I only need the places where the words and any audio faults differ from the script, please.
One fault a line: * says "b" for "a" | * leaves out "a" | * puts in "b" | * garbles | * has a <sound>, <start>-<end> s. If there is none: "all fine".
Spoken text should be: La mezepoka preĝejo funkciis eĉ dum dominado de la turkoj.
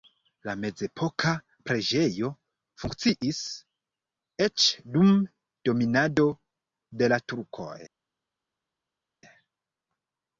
all fine